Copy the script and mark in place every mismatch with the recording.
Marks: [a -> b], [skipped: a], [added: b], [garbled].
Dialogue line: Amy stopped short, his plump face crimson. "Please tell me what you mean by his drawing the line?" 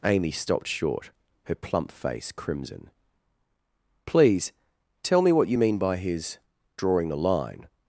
Amy stopped short, [his -> her] plump face crimson. "Please tell me what you mean by his drawing the line?"